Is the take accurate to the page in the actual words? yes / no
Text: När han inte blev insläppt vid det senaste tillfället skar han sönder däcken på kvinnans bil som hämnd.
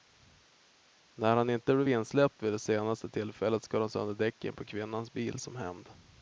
yes